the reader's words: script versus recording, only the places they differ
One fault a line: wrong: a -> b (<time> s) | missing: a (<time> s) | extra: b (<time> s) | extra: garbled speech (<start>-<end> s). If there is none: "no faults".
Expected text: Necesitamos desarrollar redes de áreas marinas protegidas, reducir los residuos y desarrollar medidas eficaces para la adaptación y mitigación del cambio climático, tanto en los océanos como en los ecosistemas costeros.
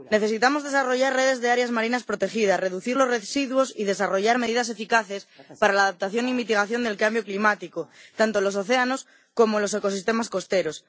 no faults